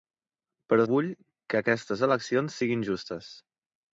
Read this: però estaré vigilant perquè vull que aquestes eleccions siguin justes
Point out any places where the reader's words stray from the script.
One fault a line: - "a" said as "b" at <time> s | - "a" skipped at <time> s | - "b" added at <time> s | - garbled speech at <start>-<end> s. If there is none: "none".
- "estaré vigilant perquè" skipped at 0.8 s